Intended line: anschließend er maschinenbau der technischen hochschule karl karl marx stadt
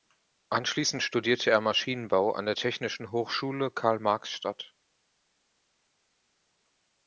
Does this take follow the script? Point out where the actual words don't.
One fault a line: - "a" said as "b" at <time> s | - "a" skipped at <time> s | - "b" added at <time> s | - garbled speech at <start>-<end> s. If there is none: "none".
- "studierte" added at 1.0 s
- "an" added at 2.3 s
- "karl" skipped at 4.0 s